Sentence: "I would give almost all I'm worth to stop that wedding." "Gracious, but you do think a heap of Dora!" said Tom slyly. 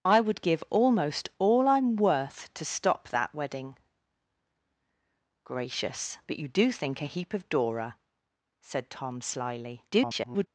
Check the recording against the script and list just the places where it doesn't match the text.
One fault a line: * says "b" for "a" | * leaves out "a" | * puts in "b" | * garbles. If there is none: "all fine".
* garbles